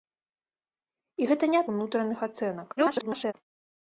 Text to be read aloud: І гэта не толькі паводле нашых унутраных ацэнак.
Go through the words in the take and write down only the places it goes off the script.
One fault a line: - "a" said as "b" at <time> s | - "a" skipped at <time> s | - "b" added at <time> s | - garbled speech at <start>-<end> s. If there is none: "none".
- "толькі паводле нашых" skipped at 1.6 s
- garbled speech at 2.8-3.3 s